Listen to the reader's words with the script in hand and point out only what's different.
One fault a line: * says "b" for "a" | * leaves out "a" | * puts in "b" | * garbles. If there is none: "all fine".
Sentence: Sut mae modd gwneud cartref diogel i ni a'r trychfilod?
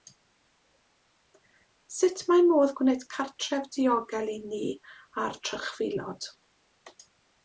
all fine